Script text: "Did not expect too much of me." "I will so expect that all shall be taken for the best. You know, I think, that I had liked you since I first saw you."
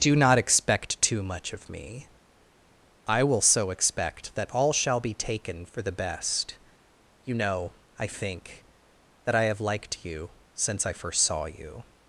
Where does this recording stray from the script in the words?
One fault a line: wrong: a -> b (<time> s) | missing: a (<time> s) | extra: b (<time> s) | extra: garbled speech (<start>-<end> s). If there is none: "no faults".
wrong: Did -> Do (0.0 s)
wrong: had -> have (9.4 s)